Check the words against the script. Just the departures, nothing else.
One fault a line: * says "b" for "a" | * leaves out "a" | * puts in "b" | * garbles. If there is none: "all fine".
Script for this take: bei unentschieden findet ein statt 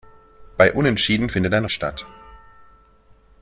all fine